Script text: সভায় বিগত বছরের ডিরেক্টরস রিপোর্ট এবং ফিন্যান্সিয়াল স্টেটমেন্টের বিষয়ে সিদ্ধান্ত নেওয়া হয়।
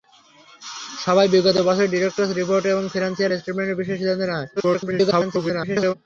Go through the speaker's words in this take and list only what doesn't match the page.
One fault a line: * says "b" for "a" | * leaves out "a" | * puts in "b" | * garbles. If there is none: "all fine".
* garbles